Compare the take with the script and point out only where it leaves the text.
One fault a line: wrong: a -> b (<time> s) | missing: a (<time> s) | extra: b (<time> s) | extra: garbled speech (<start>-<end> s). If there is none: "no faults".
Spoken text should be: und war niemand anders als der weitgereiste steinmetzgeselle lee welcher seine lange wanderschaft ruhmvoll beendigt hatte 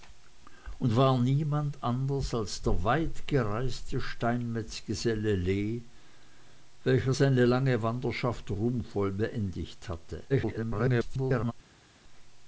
extra: garbled speech (10.3-11.5 s)